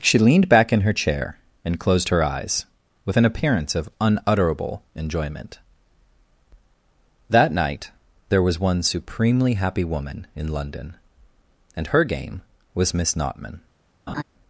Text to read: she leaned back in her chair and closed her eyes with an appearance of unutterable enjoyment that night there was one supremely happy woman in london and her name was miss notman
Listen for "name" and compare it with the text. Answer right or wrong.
wrong